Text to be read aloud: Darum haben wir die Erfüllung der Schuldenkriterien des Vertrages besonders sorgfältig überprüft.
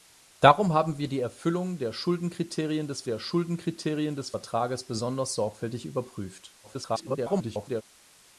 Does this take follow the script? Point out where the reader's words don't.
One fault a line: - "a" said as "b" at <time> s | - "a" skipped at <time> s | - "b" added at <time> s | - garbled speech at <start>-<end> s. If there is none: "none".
- "der Schuldenkriterien des" added at 3.0 s
- garbled speech at 6.6-7.8 s